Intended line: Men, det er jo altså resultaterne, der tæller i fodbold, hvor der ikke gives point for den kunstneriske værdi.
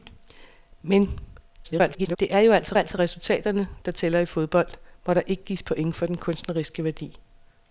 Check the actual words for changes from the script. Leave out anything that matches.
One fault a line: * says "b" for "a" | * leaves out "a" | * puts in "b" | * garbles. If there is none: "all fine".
* garbles
* puts in "altså"